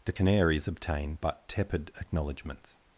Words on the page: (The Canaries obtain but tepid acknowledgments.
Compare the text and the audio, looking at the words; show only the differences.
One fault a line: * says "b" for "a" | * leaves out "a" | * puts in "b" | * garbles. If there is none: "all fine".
all fine